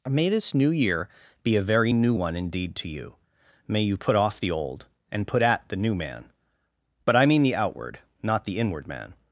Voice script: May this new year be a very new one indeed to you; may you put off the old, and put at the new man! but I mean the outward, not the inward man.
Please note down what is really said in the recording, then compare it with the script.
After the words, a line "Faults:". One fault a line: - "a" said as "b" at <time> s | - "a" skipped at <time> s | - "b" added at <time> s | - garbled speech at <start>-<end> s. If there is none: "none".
May this new year be a very new one indeed to you; may you put off the old, and put at the new man! but I mean the outward, not the inward man.
Faults:
none